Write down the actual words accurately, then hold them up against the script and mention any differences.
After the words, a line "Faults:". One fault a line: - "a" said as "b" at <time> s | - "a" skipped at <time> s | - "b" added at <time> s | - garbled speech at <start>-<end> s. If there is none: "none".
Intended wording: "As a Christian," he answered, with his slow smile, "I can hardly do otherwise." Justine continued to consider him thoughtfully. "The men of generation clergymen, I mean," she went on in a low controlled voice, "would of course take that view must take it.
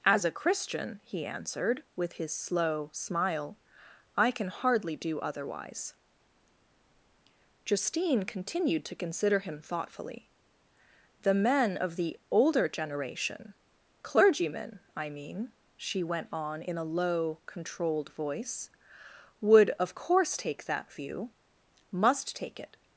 "As a Christian," he answered, with his slow smile, "I can hardly do otherwise." Justine continued to consider him thoughtfully. "The men of the older generation clergymen, I mean," she went on in a low controlled voice, "would of course take that view must take it.
Faults:
- "the older" added at 12.0 s